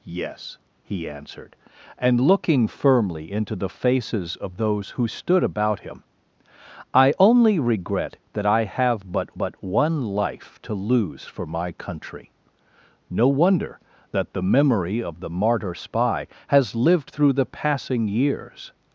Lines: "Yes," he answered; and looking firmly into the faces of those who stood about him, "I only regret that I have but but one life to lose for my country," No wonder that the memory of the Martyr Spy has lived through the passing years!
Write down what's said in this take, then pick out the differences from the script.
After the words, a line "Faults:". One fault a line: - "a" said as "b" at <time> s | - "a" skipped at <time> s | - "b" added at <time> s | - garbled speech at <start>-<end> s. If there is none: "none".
"Yes," he answered; and looking firmly into the faces of those who stood about him, "I only regret that I have but but one life to lose for my country," No wonder that the memory of the Martyr Spy has lived through the passing years!
Faults:
none